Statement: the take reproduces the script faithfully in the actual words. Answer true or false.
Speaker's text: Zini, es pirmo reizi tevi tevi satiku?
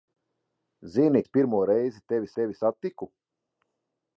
true